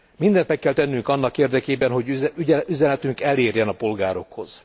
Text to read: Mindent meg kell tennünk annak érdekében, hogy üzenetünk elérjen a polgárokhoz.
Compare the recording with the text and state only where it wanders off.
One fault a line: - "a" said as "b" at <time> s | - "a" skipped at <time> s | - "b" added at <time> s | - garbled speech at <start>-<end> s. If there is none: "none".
none